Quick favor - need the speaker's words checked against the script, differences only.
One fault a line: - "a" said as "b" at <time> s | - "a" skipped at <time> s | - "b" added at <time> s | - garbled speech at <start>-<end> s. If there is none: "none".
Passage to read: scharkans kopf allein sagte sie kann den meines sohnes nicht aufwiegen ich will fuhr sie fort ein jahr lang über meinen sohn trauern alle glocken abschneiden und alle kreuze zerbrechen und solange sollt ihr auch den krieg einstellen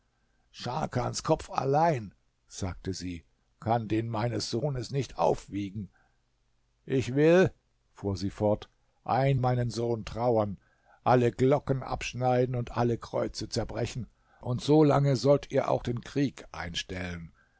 - "jahr lang über" skipped at 9.4 s